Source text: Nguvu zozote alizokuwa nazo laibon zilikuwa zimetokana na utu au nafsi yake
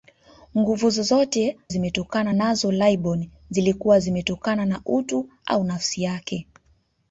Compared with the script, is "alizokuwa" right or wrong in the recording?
wrong